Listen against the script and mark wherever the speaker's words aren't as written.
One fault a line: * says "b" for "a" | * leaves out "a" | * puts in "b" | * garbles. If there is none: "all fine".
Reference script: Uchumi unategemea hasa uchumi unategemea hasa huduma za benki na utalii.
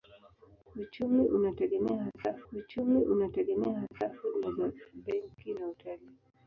all fine